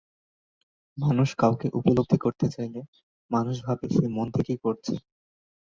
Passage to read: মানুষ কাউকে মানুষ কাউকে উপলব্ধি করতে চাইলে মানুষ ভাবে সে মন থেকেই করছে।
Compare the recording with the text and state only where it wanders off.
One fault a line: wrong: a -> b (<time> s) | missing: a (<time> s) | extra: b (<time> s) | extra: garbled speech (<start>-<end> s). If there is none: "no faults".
missing: মানুষ কাউকে (1.7 s)